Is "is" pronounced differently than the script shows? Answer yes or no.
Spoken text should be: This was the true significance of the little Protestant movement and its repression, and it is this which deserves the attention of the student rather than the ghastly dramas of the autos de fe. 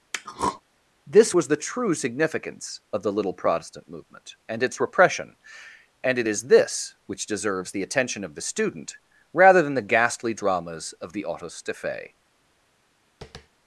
no